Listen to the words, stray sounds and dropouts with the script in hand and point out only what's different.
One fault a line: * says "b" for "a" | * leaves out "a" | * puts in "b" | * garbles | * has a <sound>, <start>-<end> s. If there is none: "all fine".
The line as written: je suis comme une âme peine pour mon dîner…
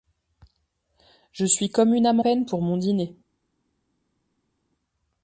all fine